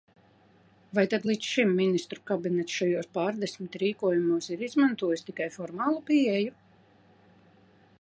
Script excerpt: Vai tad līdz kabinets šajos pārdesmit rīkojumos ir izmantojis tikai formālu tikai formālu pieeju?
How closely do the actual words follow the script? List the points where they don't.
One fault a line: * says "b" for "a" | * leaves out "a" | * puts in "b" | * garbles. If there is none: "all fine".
* puts in "šim Ministru"
* leaves out "tikai formālu"